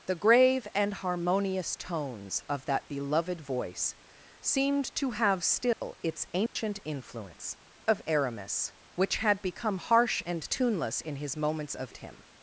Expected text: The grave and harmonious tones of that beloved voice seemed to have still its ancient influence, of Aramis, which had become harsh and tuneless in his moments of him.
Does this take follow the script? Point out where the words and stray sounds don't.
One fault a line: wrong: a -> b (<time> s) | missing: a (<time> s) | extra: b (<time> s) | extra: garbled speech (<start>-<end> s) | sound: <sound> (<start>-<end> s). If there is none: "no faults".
sound: dropout (5.7-5.8 s)
sound: dropout (6.5-6.6 s)